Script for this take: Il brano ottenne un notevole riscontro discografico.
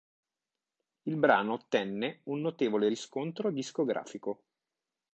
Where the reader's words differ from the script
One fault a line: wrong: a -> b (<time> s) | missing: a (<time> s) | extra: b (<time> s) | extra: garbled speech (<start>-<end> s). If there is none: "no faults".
no faults